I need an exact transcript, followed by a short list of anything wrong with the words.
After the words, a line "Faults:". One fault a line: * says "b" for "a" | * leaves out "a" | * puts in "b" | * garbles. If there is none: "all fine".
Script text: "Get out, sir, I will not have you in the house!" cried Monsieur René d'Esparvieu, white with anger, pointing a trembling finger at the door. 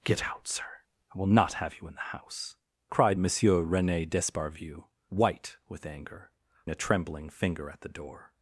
"Get out, sir, I will not have you in the house!" cried Monsieur René d'Esparvieu, white with anger, a trembling finger at the door.
Faults:
* leaves out "pointing"